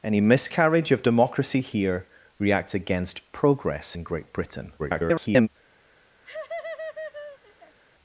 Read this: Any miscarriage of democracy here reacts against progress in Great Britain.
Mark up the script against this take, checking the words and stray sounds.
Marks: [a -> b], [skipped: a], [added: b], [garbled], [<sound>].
Any miscarriage of democracy here reacts against progress in Great Britain. [garbled] [laugh]